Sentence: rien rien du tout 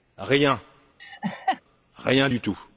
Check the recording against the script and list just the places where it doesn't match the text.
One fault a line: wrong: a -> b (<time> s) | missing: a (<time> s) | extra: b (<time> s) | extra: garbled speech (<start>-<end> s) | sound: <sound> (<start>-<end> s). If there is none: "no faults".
sound: laugh (1.0-1.6 s)